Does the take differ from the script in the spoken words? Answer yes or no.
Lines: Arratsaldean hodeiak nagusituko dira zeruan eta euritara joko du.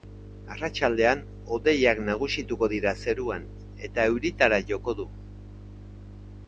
no